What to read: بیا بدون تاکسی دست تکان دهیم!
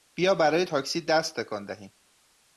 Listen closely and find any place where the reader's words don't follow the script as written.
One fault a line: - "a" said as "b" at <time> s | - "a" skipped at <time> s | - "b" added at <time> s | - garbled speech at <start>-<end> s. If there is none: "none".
- "بدون" said as "برای" at 0.3 s